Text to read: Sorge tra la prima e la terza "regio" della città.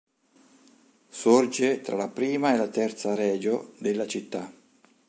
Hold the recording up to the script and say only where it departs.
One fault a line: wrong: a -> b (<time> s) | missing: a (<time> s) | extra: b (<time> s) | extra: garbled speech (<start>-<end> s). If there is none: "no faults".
no faults